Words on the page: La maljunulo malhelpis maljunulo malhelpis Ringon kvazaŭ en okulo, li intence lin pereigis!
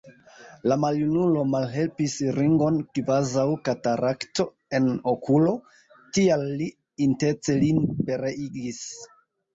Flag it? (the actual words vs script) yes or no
yes